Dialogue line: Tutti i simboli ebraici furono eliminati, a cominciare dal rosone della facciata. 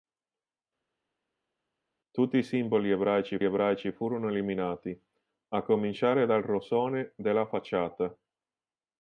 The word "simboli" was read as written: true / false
true